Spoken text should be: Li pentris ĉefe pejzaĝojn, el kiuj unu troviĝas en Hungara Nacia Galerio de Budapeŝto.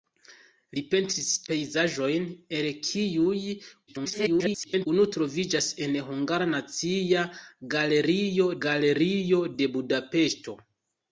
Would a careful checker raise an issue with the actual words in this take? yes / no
yes